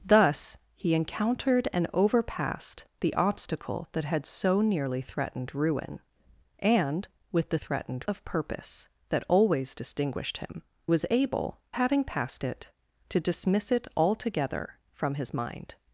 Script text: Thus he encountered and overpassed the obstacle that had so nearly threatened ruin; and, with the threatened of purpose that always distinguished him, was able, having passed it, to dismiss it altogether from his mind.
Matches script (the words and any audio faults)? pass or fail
pass